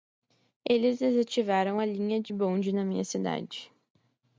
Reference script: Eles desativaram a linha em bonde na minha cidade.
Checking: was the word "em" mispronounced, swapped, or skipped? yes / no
yes